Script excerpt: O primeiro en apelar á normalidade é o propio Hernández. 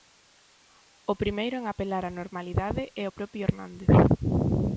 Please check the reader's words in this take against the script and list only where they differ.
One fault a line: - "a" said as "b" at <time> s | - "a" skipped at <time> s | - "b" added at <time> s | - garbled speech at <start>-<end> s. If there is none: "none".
none